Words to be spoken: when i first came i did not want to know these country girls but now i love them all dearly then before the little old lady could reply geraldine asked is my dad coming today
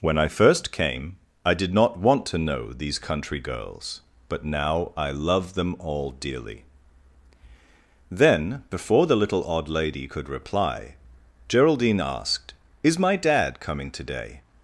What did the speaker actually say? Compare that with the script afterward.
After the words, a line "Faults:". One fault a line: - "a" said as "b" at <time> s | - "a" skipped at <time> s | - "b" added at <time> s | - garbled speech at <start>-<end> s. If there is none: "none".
when i first came i did not want to know these country girls but now i love them all dearly then before the little odd lady could reply geraldine asked is my dad coming today
Faults:
- "old" said as "odd" at 9.4 s